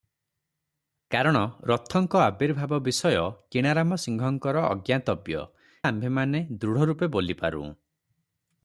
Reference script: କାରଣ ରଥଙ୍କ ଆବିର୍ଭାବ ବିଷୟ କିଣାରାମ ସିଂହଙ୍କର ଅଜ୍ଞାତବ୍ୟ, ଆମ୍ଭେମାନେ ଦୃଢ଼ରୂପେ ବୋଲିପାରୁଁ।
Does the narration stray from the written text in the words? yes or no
no